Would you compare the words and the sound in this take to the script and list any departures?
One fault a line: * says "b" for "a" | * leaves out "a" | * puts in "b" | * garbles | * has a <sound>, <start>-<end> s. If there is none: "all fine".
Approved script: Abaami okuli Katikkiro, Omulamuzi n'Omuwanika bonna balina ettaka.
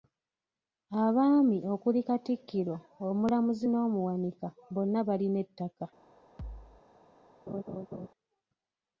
* has a thud, 6.4-6.8 s
* has a laugh, 7.5-8.1 s